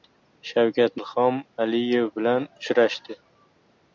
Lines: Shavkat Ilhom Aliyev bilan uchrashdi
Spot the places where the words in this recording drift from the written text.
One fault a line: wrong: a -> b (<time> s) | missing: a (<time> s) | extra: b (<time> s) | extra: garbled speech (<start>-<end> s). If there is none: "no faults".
no faults